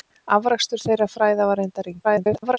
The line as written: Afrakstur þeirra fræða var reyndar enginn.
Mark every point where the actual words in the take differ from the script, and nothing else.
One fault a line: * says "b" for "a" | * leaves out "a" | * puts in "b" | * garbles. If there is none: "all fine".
* garbles